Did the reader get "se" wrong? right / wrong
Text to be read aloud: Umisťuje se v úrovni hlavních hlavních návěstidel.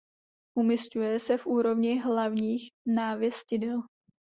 right